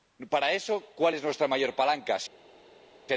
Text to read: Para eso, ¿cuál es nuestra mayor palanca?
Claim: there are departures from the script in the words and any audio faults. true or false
false